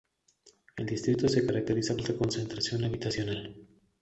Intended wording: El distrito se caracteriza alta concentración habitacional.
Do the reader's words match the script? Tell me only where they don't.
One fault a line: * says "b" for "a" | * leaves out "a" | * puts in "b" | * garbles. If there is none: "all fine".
all fine